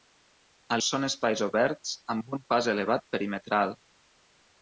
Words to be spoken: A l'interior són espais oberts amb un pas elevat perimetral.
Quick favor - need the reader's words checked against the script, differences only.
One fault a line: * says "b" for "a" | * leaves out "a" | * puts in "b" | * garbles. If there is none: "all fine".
* leaves out "l'interior"